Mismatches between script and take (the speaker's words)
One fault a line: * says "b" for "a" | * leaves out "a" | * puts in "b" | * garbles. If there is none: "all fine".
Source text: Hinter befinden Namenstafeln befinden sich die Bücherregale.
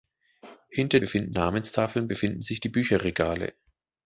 all fine